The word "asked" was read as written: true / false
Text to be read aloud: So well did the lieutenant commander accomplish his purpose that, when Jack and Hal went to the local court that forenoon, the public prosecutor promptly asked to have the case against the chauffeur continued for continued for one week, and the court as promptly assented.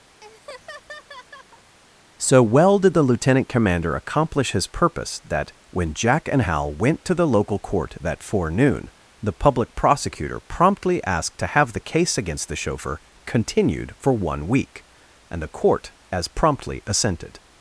true